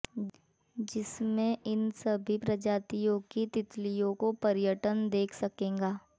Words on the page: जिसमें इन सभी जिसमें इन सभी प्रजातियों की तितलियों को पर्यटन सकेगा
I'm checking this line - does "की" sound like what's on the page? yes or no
yes